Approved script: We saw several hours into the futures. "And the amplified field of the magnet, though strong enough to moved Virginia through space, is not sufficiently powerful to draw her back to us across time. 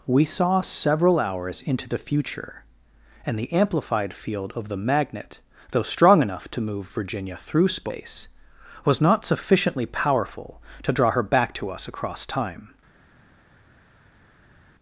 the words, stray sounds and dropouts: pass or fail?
fail